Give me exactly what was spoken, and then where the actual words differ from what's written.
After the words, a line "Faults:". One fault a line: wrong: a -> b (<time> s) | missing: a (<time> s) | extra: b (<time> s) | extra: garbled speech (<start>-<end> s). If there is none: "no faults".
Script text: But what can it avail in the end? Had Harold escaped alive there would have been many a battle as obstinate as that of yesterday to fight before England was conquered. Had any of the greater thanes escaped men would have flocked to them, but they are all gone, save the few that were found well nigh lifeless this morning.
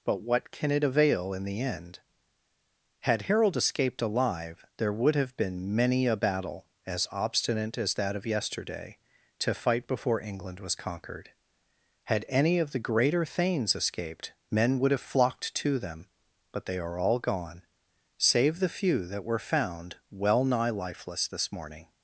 But what can it avail in the end? Had Harold escaped alive there would have been many a battle as obstinate as that of yesterday to fight before England was conquered. Had any of the greater thanes escaped men would have flocked to them, but they are all gone, save the few that were found well nigh lifeless this morning.
Faults:
no faults